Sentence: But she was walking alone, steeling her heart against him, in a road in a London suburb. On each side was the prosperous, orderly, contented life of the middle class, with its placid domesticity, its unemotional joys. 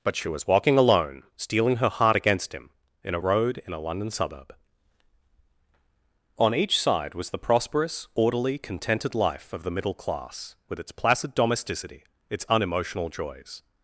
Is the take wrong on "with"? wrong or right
right